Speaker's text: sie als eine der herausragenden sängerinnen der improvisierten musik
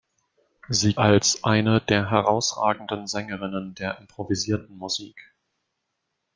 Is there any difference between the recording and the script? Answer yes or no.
no